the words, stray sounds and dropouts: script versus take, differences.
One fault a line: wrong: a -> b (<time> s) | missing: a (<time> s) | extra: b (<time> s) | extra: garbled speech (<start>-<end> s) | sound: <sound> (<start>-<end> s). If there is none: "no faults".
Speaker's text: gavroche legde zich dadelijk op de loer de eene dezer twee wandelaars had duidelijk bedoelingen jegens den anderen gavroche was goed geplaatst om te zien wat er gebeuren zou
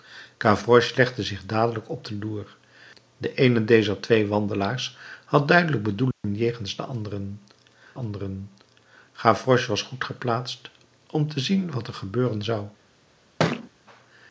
sound: dropout (6.1-6.2 s)
extra: anderen (8.0 s)
sound: thud (13.4-13.7 s)